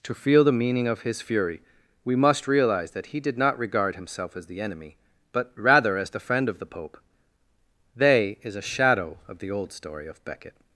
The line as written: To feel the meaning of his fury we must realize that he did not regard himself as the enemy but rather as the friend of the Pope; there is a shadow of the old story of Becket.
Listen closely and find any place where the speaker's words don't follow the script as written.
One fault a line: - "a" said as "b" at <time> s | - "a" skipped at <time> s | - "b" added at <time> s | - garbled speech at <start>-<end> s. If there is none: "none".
- "there" said as "they" at 8.0 s